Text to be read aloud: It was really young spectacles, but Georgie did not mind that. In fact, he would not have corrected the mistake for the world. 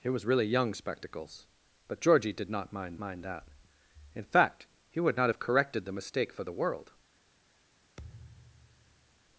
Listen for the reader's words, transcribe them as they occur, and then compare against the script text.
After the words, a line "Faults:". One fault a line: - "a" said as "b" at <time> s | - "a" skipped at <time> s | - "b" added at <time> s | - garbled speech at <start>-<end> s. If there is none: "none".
It was really young spectacles, but Georgie did not mind mind that. In fact, he would not have corrected the mistake for the world.
Faults:
- "mind" added at 3.0 s